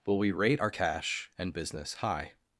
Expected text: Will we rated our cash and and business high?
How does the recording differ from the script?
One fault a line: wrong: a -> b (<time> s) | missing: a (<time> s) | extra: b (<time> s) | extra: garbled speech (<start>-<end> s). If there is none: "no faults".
wrong: rated -> rate (0.3 s)
missing: and (1.5 s)